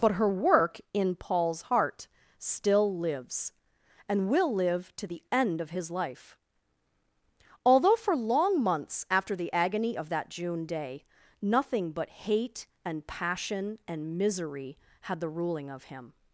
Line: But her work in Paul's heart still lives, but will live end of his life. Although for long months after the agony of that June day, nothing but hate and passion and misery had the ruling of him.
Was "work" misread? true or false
false